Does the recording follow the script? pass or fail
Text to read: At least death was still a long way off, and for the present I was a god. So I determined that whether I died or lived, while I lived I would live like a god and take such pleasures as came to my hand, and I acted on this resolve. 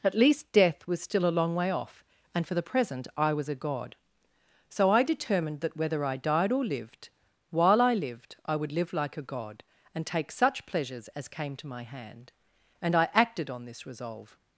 pass